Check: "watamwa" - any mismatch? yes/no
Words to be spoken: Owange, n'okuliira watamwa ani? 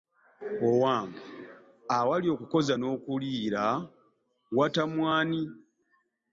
no